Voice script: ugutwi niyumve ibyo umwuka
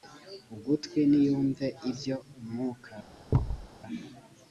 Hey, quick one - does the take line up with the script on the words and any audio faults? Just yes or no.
no